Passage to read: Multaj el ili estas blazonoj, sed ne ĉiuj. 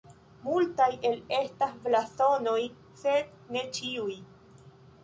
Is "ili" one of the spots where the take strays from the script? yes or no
yes